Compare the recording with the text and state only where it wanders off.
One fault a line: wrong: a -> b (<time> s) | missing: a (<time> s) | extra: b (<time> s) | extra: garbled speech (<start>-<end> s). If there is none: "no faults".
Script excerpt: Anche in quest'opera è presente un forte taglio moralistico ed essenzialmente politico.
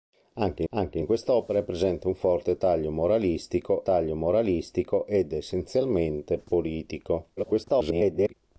extra: anche (0.7 s)
extra: taglio moralistico (3.8 s)
extra: garbled speech (7.4-8.3 s)